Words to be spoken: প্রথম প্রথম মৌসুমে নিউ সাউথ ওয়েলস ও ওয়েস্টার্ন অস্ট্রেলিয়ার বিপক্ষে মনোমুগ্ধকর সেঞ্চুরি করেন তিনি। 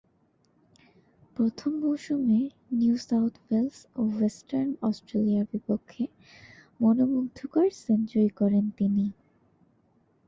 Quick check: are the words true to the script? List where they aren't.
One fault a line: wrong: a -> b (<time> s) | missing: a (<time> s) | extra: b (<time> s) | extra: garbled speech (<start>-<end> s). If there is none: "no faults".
missing: প্রথম (1.7 s)